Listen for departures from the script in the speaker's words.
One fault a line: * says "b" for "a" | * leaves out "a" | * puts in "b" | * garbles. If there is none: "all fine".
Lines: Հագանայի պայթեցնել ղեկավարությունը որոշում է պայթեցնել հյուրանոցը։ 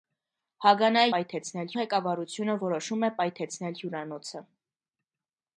all fine